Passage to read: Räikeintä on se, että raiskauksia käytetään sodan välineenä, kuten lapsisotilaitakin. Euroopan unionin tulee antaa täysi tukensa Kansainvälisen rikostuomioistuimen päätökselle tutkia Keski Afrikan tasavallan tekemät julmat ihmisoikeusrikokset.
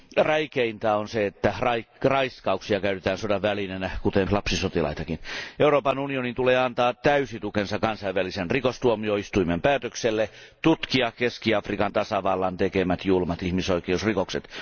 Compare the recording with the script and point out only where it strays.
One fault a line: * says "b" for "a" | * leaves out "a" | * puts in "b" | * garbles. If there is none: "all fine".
all fine